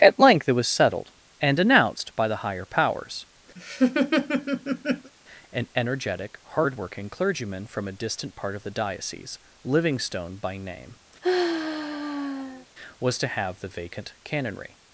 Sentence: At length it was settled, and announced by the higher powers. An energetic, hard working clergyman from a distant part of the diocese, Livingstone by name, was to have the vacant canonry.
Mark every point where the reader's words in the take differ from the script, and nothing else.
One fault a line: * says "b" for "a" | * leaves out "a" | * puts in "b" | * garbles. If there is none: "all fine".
all fine